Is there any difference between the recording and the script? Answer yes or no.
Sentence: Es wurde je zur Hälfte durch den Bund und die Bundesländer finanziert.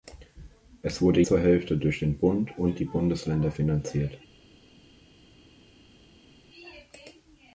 yes